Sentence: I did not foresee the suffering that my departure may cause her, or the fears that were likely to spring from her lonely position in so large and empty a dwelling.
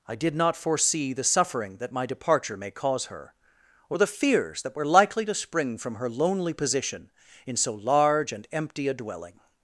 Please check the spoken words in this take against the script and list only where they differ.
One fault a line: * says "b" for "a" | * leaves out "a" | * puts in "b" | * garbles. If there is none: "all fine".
all fine